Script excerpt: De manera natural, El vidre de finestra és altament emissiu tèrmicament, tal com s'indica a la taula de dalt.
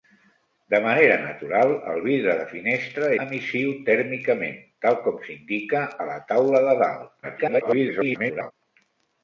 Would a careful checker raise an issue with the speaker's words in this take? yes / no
yes